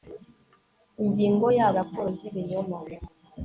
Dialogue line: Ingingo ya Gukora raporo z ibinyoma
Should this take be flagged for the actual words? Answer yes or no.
yes